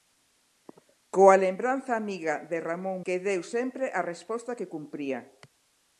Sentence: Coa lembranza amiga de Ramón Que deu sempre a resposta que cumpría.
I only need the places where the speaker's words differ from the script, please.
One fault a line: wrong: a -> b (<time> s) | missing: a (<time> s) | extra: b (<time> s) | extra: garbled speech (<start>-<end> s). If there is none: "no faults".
no faults